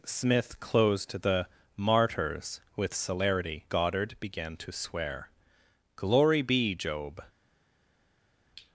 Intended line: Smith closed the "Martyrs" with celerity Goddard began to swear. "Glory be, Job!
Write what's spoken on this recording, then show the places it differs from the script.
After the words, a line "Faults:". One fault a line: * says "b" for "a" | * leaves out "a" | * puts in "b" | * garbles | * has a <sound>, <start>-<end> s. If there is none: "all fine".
Smith closed the "Martyrs" with celerity Goddard began to swear. "Glory be, Job!
Faults:
all fine